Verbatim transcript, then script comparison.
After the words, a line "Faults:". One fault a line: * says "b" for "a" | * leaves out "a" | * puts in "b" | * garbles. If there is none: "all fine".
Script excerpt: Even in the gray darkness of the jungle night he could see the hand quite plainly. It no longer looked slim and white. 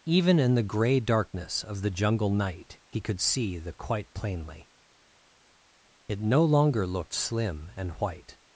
Even in the gray darkness of the jungle night he could see the quite plainly. It no longer looked slim and white.
Faults:
* leaves out "hand"